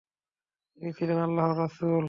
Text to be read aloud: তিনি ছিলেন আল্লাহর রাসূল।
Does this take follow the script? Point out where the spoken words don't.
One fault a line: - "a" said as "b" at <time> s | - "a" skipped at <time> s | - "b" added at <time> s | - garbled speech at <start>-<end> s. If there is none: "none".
none